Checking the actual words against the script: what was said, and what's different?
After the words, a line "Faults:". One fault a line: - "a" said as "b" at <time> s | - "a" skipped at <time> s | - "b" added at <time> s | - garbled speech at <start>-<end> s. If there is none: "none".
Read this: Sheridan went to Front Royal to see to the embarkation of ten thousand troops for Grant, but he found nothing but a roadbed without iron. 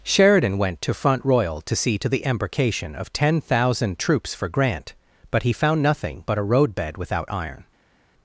Sheridan went to Front Royal to see to the embarkation of ten thousand troops for Grant, but he found nothing but a roadbed without iron.
Faults:
none